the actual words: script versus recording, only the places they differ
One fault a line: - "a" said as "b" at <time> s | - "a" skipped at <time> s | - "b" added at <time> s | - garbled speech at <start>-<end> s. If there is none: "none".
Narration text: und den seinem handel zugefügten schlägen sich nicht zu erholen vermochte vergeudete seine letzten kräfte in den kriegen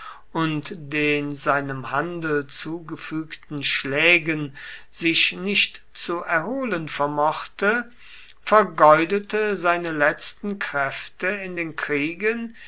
none